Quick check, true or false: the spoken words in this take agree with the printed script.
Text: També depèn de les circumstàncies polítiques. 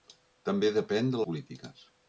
false